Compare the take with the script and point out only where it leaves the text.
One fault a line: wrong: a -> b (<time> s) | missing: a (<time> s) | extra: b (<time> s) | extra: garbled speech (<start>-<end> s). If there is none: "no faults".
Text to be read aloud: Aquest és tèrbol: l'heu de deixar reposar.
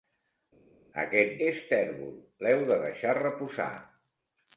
no faults